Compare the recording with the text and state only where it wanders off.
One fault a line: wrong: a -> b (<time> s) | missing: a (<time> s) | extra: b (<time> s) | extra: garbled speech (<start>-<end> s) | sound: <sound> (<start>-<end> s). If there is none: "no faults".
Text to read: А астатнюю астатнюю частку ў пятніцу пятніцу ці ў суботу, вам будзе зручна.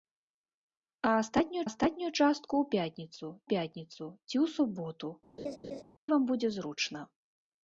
sound: laugh (5.4-5.8 s)